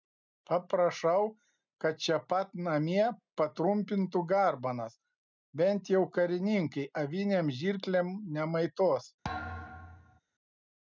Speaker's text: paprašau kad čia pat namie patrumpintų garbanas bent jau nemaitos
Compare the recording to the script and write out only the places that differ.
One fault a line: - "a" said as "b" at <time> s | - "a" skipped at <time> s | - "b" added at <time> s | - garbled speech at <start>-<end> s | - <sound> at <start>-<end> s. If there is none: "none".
- "karininkai avinėm žirklėm" added at 6.2 s
- thud at 9.2-10.2 s